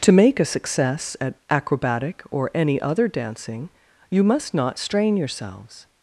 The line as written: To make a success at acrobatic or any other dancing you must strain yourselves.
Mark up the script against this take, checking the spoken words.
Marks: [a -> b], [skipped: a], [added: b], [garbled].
To make a success at acrobatic or any other dancing you must [added: not] strain yourselves.